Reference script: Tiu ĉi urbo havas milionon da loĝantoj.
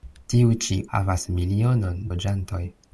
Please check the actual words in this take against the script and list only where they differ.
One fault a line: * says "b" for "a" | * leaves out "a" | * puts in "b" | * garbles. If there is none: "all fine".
* leaves out "urbo"
* leaves out "da"